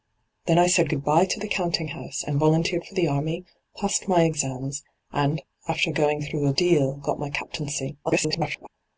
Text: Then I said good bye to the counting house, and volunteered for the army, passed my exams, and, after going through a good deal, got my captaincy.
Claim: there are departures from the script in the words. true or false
true